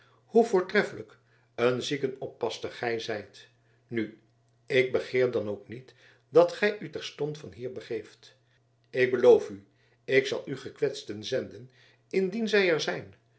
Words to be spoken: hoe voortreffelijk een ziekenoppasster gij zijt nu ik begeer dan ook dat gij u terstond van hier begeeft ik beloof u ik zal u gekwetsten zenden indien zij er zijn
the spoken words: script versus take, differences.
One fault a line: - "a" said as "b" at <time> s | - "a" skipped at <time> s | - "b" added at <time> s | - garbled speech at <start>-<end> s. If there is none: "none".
- "niet" added at 5.7 s